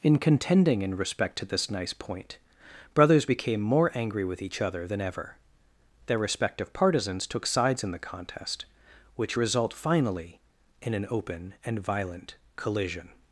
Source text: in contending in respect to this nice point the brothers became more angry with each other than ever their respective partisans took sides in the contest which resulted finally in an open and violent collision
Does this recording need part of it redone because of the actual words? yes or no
yes